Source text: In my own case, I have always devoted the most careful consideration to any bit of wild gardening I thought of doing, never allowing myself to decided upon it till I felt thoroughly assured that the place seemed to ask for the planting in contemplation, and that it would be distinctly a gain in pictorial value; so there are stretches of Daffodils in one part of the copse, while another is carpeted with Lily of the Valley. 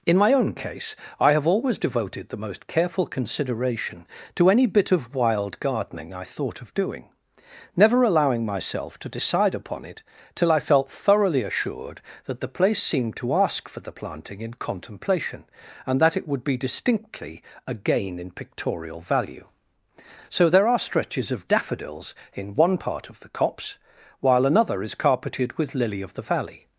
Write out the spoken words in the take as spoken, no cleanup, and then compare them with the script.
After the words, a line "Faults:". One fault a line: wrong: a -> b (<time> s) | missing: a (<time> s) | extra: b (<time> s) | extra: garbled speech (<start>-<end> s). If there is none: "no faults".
In my own case, I have always devoted the most careful consideration to any bit of wild gardening I thought of doing, never allowing myself to decide upon it till I felt thoroughly assured that the place seemed to ask for the planting in contemplation, and that it would be distinctly a gain in pictorial value; so there are stretches of Daffodils in one part of the copse, while another is carpeted with Lily of the Valley.
Faults:
wrong: decided -> decide (9.2 s)